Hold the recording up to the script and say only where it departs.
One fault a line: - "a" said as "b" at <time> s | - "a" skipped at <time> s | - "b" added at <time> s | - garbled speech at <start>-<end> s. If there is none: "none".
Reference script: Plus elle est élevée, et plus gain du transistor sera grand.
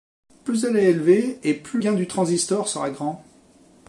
none